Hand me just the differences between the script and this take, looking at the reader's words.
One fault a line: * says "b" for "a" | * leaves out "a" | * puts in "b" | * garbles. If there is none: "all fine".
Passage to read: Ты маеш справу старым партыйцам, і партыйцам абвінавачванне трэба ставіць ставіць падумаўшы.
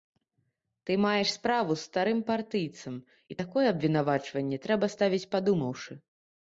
* puts in "з"
* says "такое" for "партыйцам"
* leaves out "ставіць"